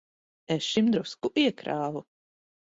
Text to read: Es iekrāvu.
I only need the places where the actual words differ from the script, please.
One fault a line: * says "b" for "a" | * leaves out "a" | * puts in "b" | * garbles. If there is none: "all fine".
* puts in "šim drusku"